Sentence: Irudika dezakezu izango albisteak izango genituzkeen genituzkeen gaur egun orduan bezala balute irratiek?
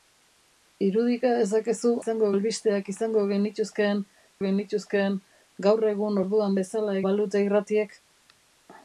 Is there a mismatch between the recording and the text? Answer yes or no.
no